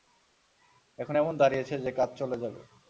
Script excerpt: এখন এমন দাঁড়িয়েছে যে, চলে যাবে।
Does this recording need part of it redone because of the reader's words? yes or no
yes